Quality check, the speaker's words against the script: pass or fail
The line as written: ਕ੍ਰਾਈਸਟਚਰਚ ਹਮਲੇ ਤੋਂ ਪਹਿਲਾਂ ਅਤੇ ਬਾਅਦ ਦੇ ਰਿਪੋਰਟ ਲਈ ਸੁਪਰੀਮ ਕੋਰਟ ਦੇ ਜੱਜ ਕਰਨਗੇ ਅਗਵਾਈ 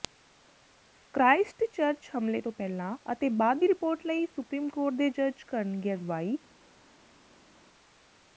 fail